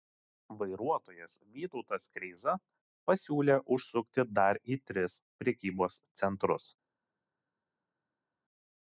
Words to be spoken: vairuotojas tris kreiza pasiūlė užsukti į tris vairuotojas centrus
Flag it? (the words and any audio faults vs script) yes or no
yes